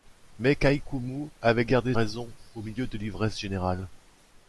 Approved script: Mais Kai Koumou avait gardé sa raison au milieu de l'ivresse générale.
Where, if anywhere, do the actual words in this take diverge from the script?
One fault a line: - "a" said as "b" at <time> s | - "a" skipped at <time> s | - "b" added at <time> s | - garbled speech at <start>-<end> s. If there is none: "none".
- "sa" skipped at 1.9 s